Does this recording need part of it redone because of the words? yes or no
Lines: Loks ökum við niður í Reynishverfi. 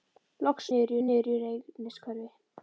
yes